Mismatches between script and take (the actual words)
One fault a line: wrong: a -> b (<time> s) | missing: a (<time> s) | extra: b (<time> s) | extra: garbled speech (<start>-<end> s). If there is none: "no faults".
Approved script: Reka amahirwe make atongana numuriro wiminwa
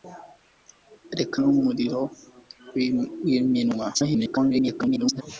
missing: amahirwe make atongana (1.4 s)
extra: garbled speech (3.9-5.2 s)